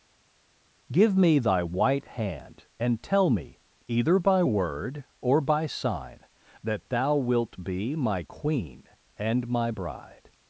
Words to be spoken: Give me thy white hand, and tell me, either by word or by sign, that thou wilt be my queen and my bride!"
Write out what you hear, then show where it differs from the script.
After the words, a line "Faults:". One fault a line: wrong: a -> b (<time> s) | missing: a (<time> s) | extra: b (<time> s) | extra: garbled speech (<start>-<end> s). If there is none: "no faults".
Give me thy white hand, and tell me, either by word or by sign, that thou wilt be my queen and my bride!"
Faults:
no faults